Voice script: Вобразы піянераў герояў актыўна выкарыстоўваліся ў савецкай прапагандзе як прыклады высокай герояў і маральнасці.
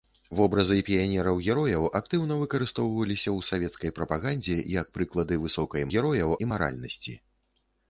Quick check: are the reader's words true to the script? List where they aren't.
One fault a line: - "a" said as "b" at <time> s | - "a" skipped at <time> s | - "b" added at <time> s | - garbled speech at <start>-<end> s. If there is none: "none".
none